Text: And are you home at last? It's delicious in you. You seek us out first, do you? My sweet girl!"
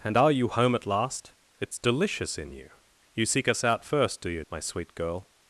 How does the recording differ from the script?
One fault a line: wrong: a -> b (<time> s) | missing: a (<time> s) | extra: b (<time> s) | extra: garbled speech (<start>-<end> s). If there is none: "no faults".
no faults